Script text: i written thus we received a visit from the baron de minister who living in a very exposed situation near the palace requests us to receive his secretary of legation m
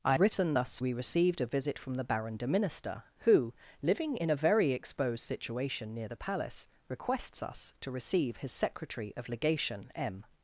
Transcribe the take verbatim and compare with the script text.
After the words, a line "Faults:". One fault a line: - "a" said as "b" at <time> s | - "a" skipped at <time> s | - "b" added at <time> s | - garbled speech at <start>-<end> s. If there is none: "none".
i written thus we received a visit from the baron de minister who living in a very exposed situation near the palace requests us to receive his secretary of legation m
Faults:
none